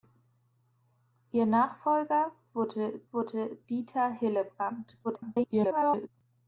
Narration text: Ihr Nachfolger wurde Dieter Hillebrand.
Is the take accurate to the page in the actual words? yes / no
no